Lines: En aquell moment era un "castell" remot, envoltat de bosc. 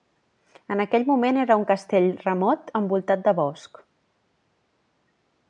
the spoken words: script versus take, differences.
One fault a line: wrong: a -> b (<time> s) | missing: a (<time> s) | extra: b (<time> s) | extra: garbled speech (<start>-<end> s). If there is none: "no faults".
no faults